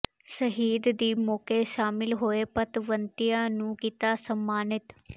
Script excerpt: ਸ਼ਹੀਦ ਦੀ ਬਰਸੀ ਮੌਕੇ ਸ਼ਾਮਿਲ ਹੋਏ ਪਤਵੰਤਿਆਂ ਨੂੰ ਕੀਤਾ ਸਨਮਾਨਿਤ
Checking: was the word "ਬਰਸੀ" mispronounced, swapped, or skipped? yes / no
yes